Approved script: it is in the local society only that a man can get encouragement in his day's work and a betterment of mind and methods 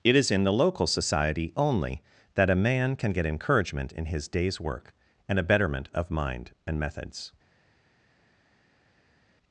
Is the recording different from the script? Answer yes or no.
no